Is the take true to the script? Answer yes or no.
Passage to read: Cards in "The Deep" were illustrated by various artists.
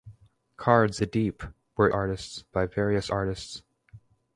no